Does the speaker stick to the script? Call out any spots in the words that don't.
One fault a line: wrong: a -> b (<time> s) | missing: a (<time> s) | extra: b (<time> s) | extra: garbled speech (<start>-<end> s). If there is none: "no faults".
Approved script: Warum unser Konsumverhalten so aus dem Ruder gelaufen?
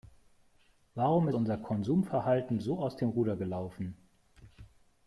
no faults